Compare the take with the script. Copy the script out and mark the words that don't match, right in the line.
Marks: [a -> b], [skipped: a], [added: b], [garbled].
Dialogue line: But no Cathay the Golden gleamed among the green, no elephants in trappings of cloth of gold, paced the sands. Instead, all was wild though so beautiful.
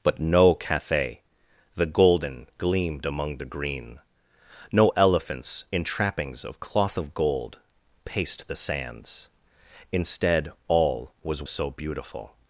But no Cathay the Golden gleamed among the green, no elephants in trappings of cloth of gold, paced the sands. Instead, all was [skipped: wild though] so beautiful.